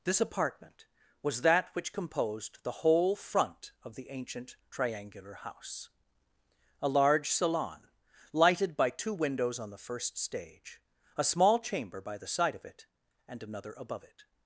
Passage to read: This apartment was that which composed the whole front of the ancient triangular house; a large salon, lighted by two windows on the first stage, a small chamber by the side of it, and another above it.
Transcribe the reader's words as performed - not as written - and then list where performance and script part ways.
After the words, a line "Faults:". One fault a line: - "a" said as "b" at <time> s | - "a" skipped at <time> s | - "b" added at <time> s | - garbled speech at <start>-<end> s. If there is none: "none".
This apartment was that which composed the whole front of the ancient triangular house; a large salon, lighted by two windows on the first stage, a small chamber by the side of it, and another above it.
Faults:
none